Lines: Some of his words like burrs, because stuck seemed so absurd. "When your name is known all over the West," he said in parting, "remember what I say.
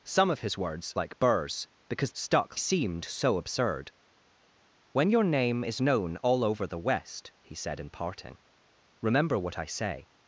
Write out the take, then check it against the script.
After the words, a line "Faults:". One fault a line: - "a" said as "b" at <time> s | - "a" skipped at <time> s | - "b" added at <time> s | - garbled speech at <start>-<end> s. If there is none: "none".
Some of his words like burrs, because stuck seemed so absurd. "When your name is known all over the West," he said in parting, "remember what I say.
Faults:
none